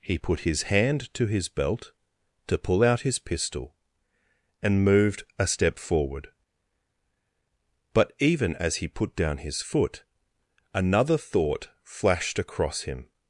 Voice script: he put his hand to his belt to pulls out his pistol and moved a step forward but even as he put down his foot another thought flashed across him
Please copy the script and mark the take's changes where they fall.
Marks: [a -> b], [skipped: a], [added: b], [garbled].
he put his hand to his belt to [pulls -> pull] out his pistol and moved a step forward but even as he put down his foot another thought flashed across him